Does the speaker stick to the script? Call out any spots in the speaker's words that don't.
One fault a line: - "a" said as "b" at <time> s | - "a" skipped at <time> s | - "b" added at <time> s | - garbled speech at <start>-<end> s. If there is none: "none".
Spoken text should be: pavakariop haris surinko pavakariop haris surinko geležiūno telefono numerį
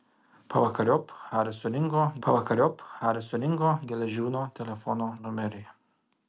none